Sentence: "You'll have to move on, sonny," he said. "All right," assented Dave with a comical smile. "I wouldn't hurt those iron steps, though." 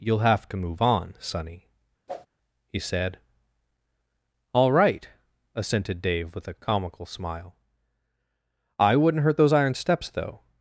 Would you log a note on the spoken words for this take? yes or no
no